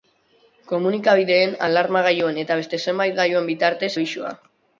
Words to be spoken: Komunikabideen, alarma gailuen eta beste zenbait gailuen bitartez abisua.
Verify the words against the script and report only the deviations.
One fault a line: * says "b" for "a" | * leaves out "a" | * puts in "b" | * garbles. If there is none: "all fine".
all fine